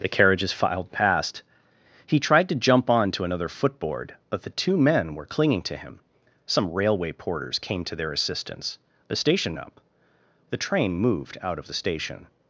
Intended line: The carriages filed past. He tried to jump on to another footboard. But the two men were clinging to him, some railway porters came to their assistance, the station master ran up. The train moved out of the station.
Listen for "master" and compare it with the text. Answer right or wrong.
wrong